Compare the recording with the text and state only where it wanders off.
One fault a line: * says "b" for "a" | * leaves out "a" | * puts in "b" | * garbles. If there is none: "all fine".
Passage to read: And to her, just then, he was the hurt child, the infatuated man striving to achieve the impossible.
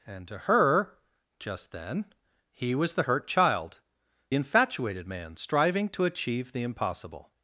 * leaves out "the"